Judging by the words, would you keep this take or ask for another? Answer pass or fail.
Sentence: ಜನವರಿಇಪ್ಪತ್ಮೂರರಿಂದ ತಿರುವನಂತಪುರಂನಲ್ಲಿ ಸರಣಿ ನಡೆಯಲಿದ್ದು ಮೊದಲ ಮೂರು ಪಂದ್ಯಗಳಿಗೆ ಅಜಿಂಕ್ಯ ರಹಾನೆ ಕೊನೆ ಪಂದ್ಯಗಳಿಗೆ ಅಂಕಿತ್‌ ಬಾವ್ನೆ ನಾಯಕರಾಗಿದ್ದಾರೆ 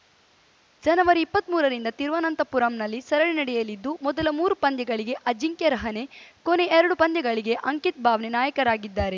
fail